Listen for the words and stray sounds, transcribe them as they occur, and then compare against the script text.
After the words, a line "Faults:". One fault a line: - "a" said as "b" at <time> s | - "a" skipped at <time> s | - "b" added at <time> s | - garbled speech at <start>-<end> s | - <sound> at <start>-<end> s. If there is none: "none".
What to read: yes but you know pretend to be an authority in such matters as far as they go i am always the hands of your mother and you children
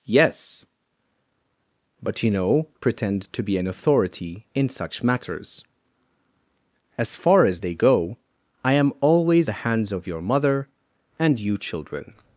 yes but you know pretend to be an authority in such matters as far as they go i am always the hands of your mother and you children
Faults:
none